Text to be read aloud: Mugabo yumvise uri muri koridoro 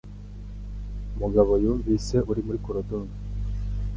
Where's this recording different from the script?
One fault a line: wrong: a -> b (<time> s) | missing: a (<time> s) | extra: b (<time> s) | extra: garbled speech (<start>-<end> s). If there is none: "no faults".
no faults